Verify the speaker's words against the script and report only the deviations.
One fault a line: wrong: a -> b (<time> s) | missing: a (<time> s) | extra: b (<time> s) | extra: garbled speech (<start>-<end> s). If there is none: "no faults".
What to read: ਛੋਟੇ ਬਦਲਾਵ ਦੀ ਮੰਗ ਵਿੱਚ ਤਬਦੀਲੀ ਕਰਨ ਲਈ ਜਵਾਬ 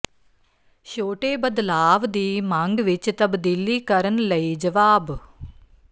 no faults